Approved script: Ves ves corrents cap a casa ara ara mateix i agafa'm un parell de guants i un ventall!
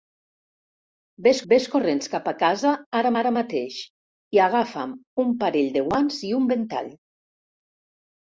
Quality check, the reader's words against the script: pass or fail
pass